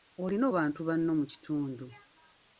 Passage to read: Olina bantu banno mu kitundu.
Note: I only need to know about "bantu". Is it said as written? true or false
true